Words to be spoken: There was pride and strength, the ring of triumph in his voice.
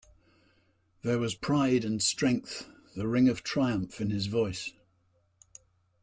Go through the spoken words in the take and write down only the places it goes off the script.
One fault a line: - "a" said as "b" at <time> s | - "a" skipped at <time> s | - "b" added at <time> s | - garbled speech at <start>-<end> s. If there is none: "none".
none